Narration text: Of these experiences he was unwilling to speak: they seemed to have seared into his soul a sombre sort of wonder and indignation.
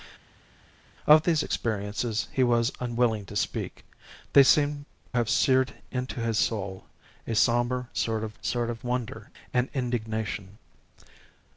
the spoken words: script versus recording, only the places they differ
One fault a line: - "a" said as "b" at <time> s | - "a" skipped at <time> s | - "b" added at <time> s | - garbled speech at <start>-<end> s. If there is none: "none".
- "to" skipped at 4.9 s
- "sort of" added at 8.4 s